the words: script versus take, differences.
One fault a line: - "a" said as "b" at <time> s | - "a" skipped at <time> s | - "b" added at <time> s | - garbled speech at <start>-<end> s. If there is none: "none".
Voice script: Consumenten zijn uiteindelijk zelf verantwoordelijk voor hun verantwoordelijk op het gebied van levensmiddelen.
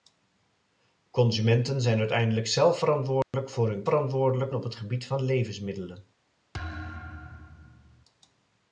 none